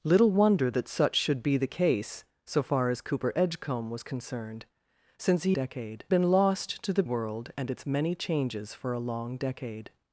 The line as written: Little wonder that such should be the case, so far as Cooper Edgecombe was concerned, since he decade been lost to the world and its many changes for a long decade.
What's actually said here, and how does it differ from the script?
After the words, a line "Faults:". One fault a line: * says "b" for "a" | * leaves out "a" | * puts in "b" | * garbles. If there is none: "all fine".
Little wonder that such should be the case, so far as Cooper Edgecombe was concerned, since he decade been lost to the world and its many changes for a long decade.
Faults:
all fine